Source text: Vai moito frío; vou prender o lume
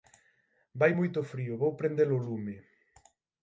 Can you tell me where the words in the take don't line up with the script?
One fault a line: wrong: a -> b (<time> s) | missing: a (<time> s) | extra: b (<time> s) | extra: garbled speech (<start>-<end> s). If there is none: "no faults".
no faults